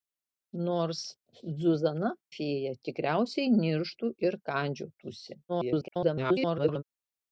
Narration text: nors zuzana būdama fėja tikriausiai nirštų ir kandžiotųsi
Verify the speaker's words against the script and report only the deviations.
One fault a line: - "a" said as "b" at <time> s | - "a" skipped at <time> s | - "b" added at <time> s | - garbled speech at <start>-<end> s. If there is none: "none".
- "būdama" skipped at 2.1 s
- garbled speech at 5.5-6.8 s